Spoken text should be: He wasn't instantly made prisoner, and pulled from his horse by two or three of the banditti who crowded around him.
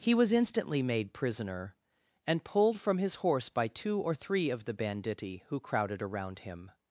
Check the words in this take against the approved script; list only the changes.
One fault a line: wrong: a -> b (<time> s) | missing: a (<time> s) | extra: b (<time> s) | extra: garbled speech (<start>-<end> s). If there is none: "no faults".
wrong: wasn't -> was (0.1 s)